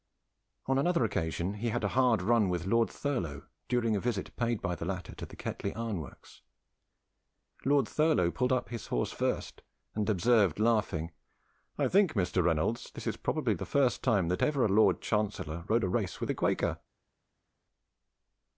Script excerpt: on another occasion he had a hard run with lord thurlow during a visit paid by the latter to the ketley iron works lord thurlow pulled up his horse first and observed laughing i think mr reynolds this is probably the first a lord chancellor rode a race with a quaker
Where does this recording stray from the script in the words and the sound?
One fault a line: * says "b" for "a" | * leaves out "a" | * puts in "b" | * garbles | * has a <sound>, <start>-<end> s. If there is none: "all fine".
* puts in "time that ever"